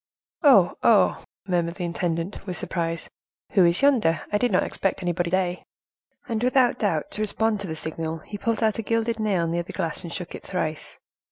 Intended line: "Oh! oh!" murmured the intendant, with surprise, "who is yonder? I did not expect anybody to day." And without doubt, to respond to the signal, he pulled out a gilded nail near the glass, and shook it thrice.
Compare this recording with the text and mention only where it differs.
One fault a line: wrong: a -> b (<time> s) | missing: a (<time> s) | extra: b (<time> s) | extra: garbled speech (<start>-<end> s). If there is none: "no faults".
missing: to (5.3 s)